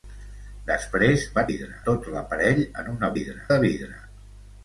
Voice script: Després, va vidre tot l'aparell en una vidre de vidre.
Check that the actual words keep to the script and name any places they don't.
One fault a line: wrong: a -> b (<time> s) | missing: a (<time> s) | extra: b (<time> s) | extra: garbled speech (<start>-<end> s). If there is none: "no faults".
no faults